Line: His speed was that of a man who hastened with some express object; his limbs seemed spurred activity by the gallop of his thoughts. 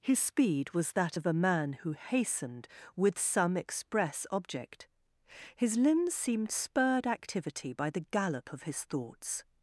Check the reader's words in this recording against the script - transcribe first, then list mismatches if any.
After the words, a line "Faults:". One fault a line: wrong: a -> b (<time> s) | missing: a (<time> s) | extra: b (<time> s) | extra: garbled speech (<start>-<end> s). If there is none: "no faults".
His speed was that of a man who hastened with some express object; his limbs seemed spurred activity by the gallop of his thoughts.
Faults:
no faults